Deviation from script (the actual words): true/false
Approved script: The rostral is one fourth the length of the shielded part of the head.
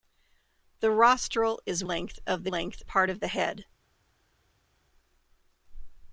true